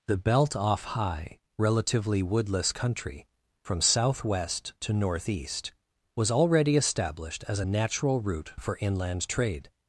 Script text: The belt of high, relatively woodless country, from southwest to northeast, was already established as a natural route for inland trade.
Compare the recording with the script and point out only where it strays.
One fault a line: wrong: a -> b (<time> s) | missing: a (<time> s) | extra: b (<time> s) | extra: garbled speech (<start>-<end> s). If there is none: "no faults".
wrong: of -> off (0.6 s)